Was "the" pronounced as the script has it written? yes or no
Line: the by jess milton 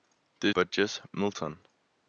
yes